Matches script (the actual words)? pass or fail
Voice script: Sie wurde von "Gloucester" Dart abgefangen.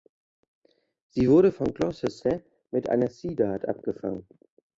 fail